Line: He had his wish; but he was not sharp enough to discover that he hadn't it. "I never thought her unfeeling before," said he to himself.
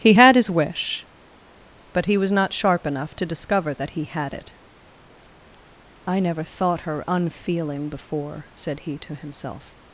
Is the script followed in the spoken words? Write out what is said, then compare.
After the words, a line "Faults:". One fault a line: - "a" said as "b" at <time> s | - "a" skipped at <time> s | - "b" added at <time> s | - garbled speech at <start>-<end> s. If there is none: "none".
He had his wish; but he was not sharp enough to discover that he had it. "I never thought her unfeeling before," said he to himself.
Faults:
- "hadn't" said as "had" at 4.1 s